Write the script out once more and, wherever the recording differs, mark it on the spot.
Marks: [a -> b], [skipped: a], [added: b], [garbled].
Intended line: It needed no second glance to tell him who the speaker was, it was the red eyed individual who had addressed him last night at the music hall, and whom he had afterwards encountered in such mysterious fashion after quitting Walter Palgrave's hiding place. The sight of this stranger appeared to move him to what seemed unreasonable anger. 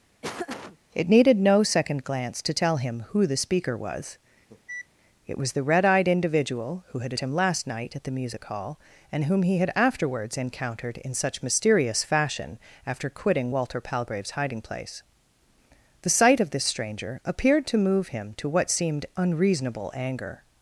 It needed no second glance to tell him who the speaker was, it was the red eyed individual who had [skipped: addressed] him last night at the music hall, and whom he had afterwards encountered in such mysterious fashion after quitting Walter Palgrave's hiding place. The sight of this stranger appeared to move him to what seemed unreasonable anger.